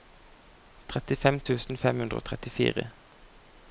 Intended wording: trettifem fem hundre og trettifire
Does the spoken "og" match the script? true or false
true